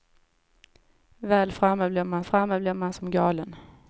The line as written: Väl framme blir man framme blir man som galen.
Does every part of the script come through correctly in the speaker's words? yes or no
yes